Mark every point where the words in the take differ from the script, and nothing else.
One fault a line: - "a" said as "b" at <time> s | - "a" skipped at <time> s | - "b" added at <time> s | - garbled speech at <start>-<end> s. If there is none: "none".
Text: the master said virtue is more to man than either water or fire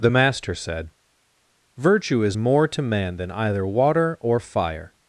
none